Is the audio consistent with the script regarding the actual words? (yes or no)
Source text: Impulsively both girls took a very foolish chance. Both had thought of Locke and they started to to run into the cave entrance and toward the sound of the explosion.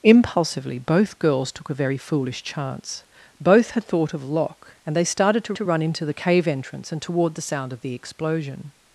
yes